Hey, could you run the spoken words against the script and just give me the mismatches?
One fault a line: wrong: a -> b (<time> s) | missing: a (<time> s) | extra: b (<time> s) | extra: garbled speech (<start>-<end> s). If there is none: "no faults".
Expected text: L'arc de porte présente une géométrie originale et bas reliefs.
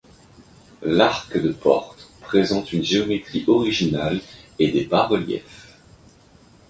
extra: des (4.7 s)